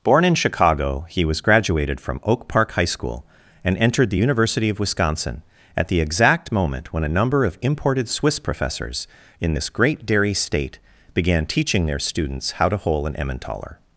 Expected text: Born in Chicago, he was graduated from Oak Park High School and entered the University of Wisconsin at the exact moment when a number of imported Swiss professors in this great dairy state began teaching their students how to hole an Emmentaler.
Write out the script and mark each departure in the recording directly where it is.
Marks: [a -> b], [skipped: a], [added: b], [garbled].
Born in Chicago, he was graduated from Oak Park High School and entered the University of Wisconsin at the exact moment when a number of imported Swiss professors in this great dairy state began teaching their students how to hole an Emmentaler.